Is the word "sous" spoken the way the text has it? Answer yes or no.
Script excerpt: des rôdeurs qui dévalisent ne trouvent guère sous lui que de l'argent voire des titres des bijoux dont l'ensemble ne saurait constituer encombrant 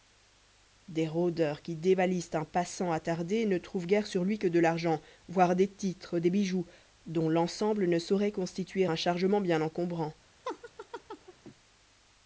no